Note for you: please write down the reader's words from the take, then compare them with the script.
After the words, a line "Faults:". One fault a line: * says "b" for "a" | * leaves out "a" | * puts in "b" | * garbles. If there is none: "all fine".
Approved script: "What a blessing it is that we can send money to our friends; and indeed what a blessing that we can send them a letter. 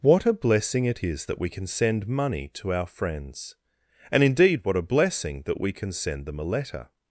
"What a blessing it is that we can send money to our friends; and indeed what a blessing that we can send them a letter.
Faults:
all fine